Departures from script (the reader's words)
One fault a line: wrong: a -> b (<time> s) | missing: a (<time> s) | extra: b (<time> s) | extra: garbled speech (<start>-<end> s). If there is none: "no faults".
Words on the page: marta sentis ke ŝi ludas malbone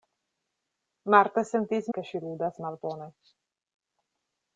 no faults